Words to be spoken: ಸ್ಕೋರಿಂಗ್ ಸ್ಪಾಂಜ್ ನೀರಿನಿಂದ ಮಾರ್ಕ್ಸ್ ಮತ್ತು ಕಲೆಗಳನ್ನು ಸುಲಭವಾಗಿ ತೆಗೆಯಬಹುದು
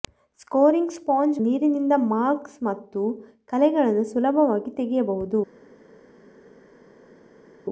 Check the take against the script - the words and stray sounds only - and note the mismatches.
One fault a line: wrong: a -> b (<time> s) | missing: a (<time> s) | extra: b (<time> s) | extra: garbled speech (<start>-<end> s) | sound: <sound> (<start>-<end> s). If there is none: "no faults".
no faults